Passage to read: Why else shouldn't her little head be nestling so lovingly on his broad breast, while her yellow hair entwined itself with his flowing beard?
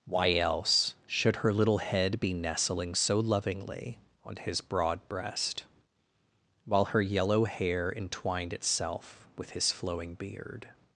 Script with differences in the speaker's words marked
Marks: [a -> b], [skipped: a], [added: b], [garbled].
Why else [shouldn't -> should] her little head be nestling so lovingly on his broad breast, while her yellow hair entwined itself with his flowing beard?